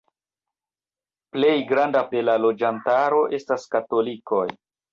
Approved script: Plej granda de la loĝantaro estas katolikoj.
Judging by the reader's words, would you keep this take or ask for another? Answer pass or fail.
pass